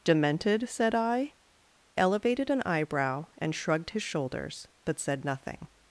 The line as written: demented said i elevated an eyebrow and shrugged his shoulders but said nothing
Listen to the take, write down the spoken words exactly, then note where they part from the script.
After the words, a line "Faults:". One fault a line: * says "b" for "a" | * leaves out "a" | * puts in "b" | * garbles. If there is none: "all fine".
demented said i elevated an eyebrow and shrugged his shoulders but said nothing
Faults:
all fine